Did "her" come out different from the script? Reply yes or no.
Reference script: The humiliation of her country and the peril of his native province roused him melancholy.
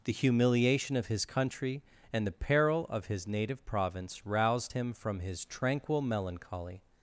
yes